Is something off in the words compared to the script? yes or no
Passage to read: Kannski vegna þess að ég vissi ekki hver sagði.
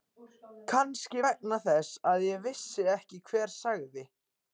no